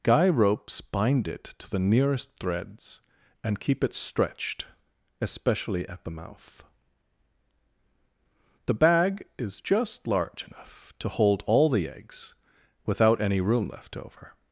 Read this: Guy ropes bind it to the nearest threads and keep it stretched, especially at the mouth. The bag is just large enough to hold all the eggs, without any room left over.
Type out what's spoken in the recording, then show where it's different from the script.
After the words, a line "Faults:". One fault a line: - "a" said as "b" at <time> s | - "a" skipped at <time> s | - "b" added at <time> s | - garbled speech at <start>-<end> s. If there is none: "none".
Guy ropes bind it to the nearest threads and keep it stretched, especially at the mouth. The bag is just large enough to hold all the eggs, without any room left over.
Faults:
none